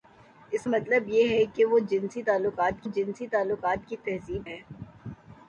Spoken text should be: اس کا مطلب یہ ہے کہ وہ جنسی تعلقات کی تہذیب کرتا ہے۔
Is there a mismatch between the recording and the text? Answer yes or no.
yes